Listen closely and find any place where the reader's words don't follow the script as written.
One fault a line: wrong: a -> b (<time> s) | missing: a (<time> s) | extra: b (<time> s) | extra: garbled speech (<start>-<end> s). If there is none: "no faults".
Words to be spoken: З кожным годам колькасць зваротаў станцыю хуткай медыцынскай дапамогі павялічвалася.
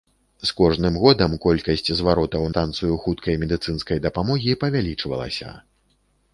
no faults